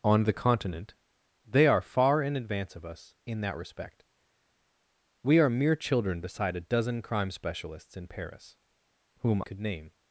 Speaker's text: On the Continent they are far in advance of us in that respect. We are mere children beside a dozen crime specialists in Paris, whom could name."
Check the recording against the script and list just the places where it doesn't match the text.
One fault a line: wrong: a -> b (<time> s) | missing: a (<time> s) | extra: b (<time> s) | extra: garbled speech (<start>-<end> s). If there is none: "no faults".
no faults